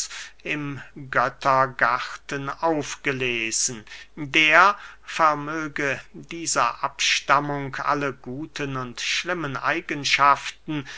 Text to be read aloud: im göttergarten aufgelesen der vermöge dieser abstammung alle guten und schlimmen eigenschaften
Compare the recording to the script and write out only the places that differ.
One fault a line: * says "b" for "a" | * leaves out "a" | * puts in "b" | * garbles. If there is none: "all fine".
all fine